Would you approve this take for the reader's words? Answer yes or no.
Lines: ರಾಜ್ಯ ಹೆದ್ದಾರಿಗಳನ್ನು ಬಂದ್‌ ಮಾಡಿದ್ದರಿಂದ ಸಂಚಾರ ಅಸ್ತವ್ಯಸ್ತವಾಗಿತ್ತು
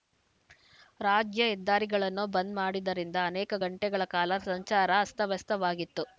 no